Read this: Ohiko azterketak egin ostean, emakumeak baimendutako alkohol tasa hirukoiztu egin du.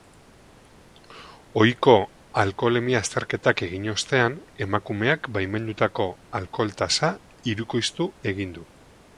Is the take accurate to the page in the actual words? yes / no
no